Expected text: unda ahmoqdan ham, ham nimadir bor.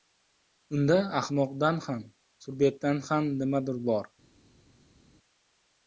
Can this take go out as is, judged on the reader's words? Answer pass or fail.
fail